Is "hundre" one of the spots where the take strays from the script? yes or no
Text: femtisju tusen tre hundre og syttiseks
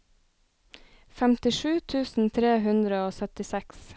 no